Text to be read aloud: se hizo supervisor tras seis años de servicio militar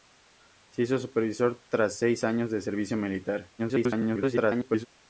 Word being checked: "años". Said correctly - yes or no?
yes